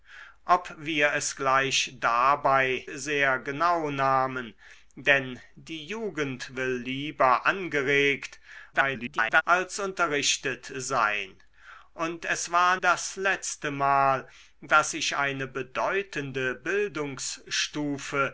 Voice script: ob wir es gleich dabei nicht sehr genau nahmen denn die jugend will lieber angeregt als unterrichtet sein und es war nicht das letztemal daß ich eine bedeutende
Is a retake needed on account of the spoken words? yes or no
yes